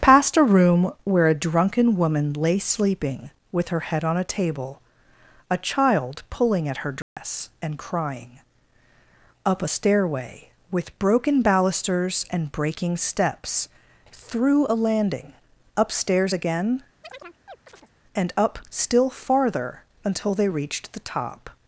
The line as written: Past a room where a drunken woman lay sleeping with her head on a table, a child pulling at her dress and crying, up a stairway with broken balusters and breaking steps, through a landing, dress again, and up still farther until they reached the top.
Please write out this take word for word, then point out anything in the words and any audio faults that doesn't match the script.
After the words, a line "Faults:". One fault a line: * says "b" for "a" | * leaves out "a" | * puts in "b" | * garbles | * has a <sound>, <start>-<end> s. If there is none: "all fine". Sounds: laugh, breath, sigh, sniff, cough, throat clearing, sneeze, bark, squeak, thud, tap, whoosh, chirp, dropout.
Past a room where a drunken woman lay sleeping with her head on a table, a child pulling at her dress and crying, up a stairway with broken balusters and breaking steps, through a landing, upstairs again, and up still farther until they reached the top.
Faults:
* has a dropout, 7.0-7.2 s
* says "upstairs" for "dress"
* has a chirp, 17.0-17.9 s